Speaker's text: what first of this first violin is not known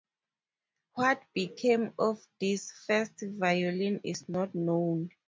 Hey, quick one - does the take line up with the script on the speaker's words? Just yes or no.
no